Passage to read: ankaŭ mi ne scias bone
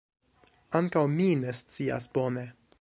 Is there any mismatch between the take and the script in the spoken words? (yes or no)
no